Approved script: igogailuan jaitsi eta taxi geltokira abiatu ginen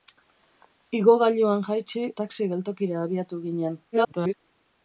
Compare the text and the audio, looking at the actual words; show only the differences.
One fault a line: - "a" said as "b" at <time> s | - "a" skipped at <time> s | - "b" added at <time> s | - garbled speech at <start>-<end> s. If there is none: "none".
- "eta" skipped at 2.1 s
- garbled speech at 3.9-4.3 s